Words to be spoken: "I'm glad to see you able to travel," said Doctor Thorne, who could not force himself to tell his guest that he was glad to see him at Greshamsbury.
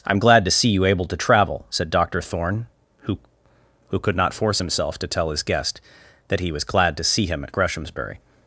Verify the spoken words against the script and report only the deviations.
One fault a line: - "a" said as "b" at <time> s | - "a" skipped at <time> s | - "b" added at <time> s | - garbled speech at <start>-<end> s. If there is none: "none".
- "who" added at 3.9 s